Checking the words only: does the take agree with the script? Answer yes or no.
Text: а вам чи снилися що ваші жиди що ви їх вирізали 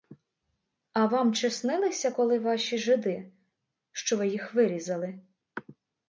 no